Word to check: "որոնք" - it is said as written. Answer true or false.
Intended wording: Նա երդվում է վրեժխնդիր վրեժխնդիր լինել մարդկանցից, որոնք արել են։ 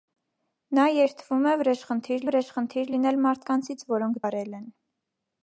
true